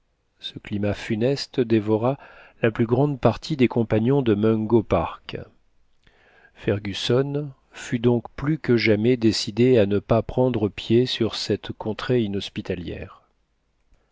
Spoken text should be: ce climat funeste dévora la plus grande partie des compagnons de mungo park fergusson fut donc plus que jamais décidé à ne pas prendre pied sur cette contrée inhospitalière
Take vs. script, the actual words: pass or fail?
pass